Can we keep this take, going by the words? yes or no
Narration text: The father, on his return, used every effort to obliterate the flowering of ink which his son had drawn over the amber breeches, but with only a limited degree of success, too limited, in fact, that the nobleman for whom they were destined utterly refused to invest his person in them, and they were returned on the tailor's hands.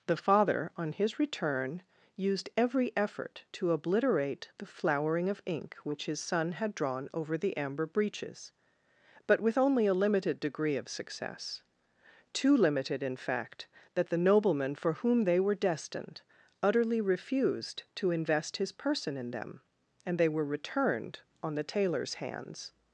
yes